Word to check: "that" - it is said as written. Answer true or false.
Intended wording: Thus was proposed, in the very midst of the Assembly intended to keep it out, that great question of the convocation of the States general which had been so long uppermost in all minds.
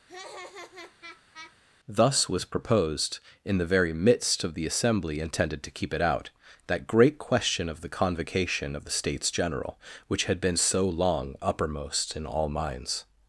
true